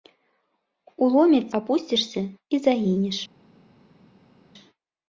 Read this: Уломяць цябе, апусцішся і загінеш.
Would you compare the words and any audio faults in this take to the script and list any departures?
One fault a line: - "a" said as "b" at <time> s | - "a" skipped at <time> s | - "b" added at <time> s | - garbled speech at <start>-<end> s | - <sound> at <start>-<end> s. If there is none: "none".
- "цябе" skipped at 1.5 s